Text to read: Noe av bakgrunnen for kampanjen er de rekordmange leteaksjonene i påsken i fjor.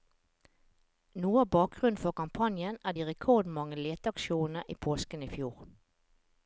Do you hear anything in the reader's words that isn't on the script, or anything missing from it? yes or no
no